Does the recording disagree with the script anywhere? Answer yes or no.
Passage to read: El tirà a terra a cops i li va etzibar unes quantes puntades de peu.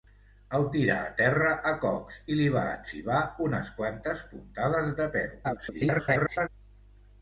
yes